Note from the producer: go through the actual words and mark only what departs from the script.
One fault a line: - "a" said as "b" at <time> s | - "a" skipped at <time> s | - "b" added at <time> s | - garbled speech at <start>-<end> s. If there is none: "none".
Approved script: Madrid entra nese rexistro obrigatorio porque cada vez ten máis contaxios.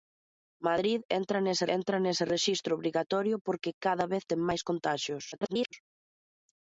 - "entra nese" added at 1.8 s
- garbled speech at 5.3-5.7 s